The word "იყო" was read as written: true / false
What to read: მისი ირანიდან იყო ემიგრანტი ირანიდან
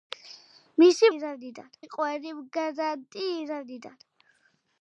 true